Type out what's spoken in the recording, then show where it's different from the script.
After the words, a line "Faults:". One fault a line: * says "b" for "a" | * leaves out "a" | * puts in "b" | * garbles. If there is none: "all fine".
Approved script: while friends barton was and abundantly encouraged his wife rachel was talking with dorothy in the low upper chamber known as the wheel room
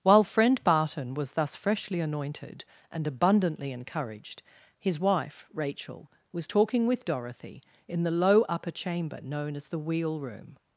while friend barton was thus freshly anointed and abundantly encouraged his wife rachel was talking with dorothy in the low upper chamber known as the wheel room
Faults:
* says "friend" for "friends"
* puts in "thus freshly anointed"